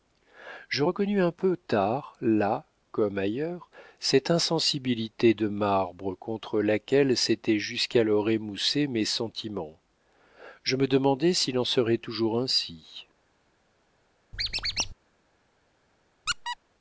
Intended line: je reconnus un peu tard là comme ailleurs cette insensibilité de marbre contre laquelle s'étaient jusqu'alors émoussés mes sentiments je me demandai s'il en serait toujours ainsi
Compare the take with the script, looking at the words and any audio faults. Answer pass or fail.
fail